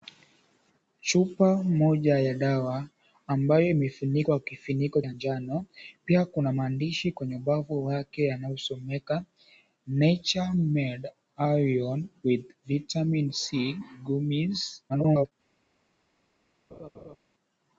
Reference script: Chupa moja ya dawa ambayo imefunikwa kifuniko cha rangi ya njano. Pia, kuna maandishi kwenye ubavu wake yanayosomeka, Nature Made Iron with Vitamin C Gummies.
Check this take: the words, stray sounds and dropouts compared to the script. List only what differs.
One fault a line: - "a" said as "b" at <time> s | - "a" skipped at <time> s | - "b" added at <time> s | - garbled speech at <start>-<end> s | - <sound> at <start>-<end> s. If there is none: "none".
- "cha rangi" skipped at 5.0 s
- garbled speech at 14.9-15.3 s
- laugh at 16.7-17.2 s